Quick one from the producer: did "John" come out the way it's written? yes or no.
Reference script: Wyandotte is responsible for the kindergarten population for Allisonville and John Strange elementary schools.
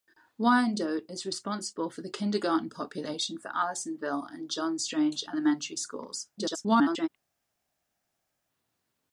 yes